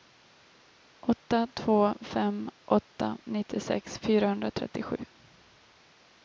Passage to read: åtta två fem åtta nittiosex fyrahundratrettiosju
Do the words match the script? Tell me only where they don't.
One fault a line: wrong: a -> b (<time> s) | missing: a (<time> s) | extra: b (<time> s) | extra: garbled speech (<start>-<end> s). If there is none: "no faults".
no faults